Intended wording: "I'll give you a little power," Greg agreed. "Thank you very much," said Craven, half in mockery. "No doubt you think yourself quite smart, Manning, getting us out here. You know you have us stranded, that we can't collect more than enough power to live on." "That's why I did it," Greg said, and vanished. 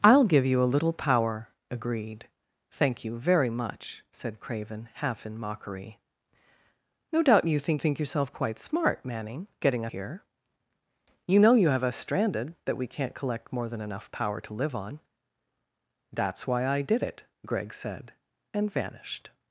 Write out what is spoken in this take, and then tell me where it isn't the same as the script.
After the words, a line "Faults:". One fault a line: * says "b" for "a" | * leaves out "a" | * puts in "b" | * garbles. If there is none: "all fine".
"I'll give you a little power," Agreed. "Thank you very much," said Craven, half in mockery. "No doubt you think think yourself quite smart, Manning, getting here. You know you have us stranded, that we can't collect more than enough power to live on." "That's why I did it," Greg said, and vanished.
Faults:
* leaves out "Greg"
* puts in "think"
* leaves out "us out"